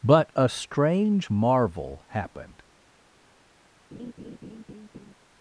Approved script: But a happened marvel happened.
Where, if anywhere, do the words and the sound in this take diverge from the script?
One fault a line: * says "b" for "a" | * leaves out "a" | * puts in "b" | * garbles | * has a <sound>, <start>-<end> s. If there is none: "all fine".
* says "strange" for "happened"
* has a laugh, 3.9-5.1 s